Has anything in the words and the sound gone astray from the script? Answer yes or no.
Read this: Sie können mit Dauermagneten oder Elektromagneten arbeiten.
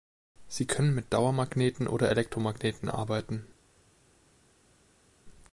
no